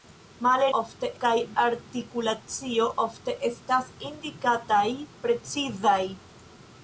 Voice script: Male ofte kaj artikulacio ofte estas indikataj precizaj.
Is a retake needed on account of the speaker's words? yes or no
no